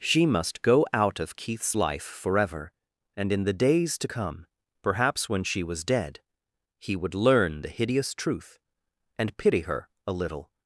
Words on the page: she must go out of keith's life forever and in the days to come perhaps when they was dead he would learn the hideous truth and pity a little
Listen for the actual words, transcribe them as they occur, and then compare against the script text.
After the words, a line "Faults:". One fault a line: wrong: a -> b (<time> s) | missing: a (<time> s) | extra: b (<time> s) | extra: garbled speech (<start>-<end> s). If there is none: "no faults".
she must go out of keith's life forever and in the days to come perhaps when she was dead he would learn the hideous truth and pity her a little
Faults:
wrong: they -> she (5.4 s)
extra: her (9.6 s)